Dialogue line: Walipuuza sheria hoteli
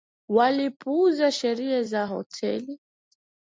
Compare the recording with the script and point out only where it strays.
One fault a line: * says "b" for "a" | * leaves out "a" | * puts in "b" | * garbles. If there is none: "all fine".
* puts in "za"